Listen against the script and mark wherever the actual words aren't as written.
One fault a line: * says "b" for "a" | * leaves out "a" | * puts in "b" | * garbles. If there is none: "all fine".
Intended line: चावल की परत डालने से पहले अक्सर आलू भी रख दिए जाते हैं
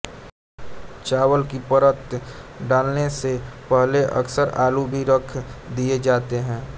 all fine